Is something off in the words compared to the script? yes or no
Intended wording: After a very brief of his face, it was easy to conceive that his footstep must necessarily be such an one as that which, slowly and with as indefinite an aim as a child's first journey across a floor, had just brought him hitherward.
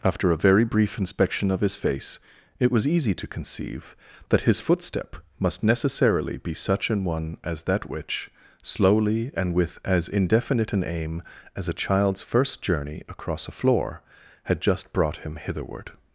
yes